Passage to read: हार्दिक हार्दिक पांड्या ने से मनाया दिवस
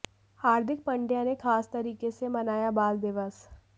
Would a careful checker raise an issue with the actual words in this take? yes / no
yes